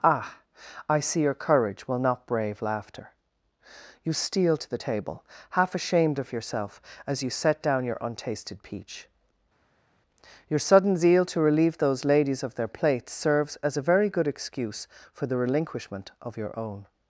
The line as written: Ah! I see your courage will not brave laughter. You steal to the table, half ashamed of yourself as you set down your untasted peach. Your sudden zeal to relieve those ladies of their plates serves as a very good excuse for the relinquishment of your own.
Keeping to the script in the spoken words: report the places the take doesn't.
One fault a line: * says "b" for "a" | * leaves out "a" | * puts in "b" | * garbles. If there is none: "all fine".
all fine